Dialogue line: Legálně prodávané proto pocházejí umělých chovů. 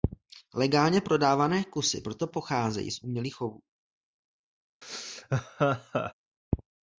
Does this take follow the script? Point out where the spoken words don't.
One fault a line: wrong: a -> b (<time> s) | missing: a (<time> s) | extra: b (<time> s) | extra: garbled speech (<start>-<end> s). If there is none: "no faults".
extra: kusy (1.6 s)
extra: z (2.9 s)